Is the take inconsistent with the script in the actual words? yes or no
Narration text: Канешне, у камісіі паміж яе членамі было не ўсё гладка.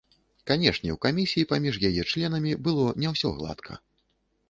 no